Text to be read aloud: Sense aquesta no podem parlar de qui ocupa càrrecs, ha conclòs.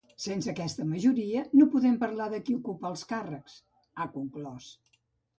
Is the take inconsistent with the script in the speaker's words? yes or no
yes